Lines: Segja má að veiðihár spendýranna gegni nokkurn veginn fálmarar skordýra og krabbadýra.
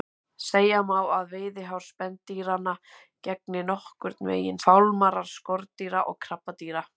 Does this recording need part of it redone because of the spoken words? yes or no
no